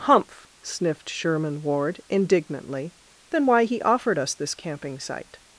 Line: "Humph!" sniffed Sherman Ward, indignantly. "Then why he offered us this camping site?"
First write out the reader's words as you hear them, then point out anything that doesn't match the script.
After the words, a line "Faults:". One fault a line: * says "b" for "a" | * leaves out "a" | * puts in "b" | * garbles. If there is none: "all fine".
"Humph!" sniffed Sherman Ward, indignantly. "Then why he offered us this camping site?"
Faults:
all fine